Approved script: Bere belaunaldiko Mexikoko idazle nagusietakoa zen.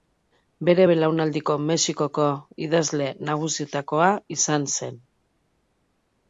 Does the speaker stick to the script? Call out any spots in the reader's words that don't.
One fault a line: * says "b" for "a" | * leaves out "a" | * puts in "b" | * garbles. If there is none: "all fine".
* puts in "izan"